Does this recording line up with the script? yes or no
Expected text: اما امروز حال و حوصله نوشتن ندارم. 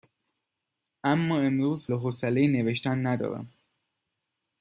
no